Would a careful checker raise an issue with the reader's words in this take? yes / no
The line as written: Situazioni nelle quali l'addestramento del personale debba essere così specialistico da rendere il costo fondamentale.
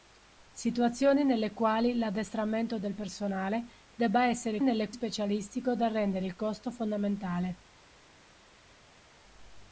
yes